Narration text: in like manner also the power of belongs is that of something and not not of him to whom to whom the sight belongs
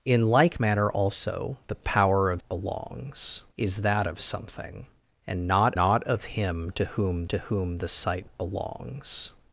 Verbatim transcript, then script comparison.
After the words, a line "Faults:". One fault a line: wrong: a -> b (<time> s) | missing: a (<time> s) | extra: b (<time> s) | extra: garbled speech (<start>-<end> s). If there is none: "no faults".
in like manner also the power of belongs is that of something and not not of him to whom to whom the sight belongs
Faults:
no faults